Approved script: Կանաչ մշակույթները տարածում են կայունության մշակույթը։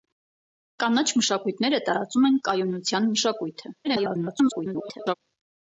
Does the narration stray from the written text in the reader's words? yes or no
yes